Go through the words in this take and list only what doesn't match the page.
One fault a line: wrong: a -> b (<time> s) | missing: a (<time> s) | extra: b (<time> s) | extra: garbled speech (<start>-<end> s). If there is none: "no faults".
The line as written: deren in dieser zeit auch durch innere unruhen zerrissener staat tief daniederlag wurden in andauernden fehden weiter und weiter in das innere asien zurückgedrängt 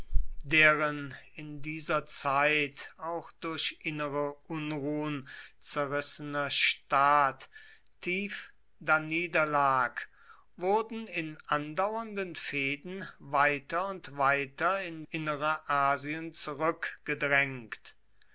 missing: das (15.1 s)